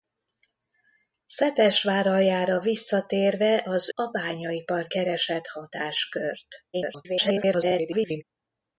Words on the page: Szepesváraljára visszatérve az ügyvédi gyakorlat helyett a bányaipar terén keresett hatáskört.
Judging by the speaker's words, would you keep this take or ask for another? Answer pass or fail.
fail